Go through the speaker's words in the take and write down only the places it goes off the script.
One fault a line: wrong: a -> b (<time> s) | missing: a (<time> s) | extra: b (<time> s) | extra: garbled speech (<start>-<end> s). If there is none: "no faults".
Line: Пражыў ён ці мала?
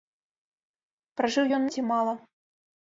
no faults